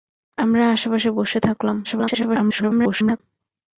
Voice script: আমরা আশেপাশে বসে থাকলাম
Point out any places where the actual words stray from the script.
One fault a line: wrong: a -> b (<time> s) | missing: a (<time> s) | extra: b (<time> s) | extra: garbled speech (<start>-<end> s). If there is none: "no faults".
extra: garbled speech (1.8-3.2 s)